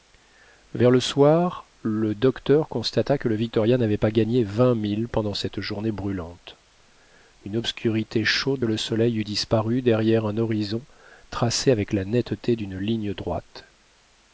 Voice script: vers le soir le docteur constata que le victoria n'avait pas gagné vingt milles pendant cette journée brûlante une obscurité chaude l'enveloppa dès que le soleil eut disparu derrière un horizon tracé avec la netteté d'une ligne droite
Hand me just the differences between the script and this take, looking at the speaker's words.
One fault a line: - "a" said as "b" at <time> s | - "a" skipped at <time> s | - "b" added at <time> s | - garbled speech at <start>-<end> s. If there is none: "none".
- "l'enveloppa dès que" skipped at 8.7 s